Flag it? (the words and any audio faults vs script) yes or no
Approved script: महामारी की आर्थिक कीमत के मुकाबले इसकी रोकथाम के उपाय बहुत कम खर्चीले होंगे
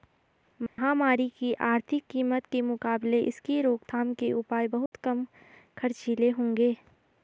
yes